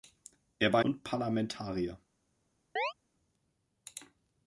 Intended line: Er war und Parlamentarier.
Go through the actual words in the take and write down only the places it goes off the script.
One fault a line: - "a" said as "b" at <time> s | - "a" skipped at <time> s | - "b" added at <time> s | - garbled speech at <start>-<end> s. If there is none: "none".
none